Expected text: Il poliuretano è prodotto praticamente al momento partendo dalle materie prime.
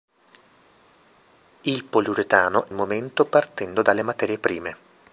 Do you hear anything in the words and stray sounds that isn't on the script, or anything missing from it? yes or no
yes